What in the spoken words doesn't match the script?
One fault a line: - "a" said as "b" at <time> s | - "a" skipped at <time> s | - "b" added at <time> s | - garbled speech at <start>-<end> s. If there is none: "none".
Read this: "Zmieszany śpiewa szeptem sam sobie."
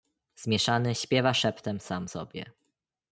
none